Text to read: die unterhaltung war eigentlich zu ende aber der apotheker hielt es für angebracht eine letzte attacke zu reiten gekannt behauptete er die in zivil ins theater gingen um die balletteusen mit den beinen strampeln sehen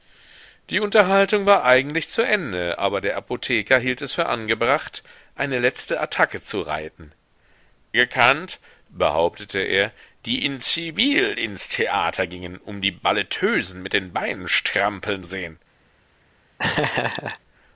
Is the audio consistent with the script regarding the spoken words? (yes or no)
yes